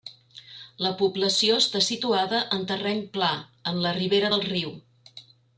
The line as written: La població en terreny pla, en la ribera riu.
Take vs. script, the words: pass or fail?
fail